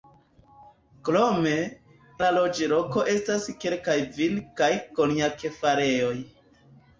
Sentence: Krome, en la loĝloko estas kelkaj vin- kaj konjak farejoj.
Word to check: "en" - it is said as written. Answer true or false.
false